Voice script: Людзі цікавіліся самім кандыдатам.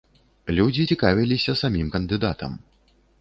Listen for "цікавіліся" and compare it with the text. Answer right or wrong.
right